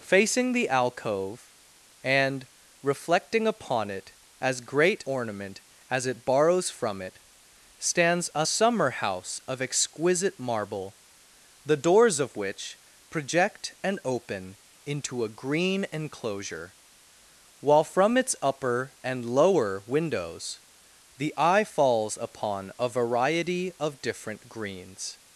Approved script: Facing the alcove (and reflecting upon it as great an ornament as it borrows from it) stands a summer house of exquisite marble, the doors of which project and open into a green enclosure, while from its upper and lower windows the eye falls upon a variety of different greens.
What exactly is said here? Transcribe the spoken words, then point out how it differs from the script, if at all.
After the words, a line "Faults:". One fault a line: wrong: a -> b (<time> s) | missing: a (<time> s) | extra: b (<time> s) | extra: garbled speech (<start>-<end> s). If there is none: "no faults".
Facing the alcove (and reflecting upon it as great ornament as it borrows from it) stands a summer house of exquisite marble, the doors of which project and open into a green enclosure, while from its upper and lower windows the eye falls upon a variety of different greens.
Faults:
missing: an (5.0 s)